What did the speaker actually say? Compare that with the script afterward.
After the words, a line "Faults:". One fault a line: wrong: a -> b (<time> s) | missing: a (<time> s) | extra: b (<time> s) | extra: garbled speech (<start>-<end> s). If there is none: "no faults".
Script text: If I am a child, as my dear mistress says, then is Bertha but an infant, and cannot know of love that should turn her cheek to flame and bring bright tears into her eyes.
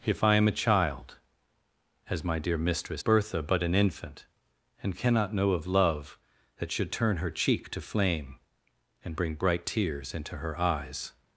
If I am a child, as my dear mistress Bertha but an infant, and cannot know of love that should turn her cheek to flame and bring bright tears into her eyes.
Faults:
missing: says then is (3.0 s)